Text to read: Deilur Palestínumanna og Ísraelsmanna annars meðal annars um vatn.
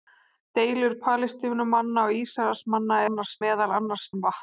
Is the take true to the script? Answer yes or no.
yes